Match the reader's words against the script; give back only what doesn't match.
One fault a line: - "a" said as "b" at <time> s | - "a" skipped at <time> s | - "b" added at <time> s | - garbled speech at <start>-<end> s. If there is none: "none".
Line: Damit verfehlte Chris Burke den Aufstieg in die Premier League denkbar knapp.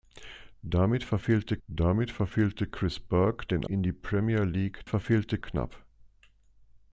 - "damit verfehlte" added at 1.7 s
- "Aufstieg" skipped at 3.6 s
- "denkbar" said as "verfehlte" at 4.8 s